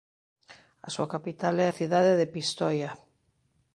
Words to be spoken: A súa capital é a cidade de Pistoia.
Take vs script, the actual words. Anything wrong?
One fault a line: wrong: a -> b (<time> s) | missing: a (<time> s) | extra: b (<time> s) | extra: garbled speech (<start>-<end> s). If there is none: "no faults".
no faults